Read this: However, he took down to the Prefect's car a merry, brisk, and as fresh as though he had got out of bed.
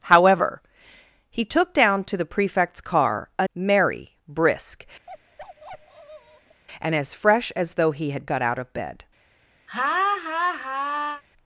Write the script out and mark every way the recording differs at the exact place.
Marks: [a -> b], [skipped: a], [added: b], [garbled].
However, he took down to the Prefect's car a merry, brisk, and as fresh as though he had got out of bed.